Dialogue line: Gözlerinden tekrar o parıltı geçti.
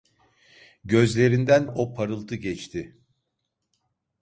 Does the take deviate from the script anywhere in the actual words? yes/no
yes